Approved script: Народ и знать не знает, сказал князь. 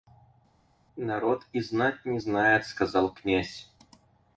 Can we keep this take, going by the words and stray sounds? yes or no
yes